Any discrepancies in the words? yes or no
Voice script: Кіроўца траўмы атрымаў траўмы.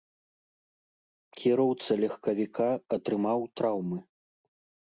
yes